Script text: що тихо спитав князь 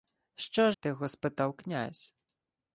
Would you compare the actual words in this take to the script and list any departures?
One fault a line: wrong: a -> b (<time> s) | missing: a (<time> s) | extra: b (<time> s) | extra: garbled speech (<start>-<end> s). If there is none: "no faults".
no faults